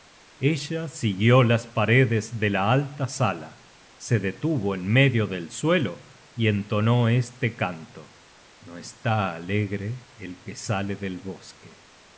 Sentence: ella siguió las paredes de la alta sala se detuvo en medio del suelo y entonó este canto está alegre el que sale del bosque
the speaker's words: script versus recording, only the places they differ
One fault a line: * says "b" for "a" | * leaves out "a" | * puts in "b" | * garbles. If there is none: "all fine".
* puts in "no"